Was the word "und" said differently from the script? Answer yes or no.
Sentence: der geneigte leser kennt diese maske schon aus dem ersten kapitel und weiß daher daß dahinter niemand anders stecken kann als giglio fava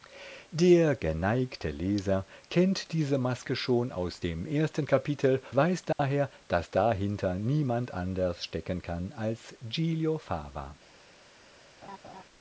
yes